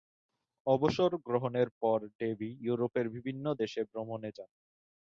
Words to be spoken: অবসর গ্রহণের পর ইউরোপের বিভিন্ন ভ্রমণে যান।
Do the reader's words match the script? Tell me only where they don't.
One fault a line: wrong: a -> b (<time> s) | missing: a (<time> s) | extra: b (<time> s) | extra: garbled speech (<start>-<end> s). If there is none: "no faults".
extra: ডেভি (2.2 s)
extra: দেশে (3.6 s)